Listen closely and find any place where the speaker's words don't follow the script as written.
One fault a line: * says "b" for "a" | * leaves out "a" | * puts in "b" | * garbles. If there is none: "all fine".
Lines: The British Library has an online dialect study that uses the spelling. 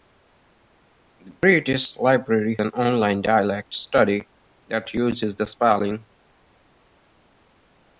* leaves out "has"